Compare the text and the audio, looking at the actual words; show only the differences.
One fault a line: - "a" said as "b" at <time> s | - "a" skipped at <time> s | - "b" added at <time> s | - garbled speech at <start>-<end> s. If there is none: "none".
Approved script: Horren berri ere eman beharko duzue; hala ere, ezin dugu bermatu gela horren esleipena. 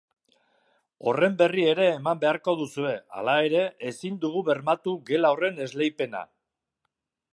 none